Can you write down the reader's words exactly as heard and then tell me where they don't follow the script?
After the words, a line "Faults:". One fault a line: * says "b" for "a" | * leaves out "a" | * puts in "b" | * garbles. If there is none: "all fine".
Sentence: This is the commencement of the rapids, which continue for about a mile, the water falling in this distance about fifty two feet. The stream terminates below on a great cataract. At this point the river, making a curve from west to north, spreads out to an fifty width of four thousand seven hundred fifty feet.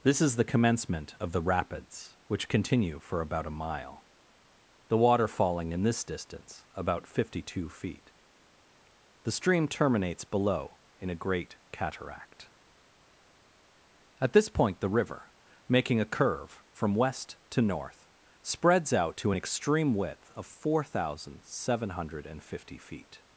This is the commencement of the rapids, which continue for about a mile, the water falling in this distance about fifty two feet. The stream terminates below in a great cataract. At this point the river, making a curve from west to north, spreads out to an extreme width of four thousand seven hundred fifty feet.
Faults:
* says "in" for "on"
* says "extreme" for "fifty"